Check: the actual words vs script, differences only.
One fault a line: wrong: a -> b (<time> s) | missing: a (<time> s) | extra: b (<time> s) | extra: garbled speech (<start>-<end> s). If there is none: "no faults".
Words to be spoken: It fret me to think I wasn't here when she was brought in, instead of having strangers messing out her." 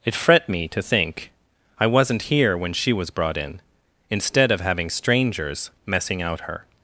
no faults